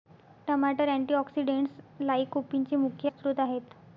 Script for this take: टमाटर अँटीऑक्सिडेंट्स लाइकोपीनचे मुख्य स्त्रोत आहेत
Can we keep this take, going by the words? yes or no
yes